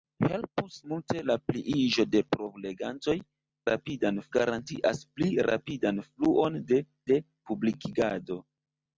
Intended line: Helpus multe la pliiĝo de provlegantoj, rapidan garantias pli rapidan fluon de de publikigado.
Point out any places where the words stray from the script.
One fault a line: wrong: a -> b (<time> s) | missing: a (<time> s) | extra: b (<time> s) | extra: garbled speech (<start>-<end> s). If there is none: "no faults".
no faults